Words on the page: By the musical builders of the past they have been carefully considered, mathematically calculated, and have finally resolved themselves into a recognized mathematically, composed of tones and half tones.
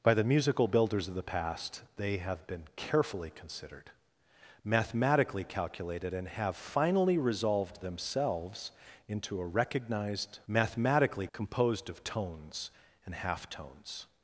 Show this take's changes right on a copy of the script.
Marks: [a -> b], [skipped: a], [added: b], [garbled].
By the musical builders of the past they have been carefully considered, mathematically calculated, and have finally resolved themselves into a recognized mathematically, composed of tones and half tones.